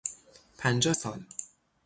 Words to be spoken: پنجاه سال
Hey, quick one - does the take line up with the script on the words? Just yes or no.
yes